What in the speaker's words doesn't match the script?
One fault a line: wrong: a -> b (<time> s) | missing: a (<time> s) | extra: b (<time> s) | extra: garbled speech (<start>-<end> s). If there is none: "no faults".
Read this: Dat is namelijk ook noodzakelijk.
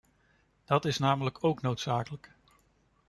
no faults